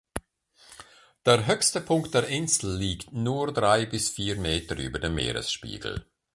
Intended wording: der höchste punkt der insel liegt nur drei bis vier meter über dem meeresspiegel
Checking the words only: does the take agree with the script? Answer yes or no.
yes